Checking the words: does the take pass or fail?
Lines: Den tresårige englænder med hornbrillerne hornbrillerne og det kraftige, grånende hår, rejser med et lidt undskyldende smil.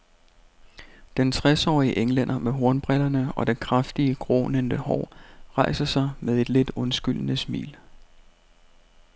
fail